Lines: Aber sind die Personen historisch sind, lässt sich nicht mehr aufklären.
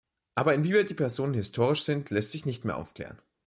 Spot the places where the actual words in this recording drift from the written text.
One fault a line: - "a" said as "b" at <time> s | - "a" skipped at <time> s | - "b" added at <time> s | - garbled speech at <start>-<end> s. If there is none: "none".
- "sind" said as "inwieweit" at 0.5 s